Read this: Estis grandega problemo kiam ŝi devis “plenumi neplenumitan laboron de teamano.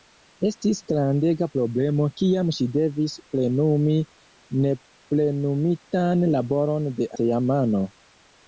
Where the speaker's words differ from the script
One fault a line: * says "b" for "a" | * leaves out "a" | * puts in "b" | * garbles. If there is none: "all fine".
all fine